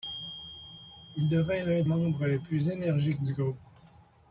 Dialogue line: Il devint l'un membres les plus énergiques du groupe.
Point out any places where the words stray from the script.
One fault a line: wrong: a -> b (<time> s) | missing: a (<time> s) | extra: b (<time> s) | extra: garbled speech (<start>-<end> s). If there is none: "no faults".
no faults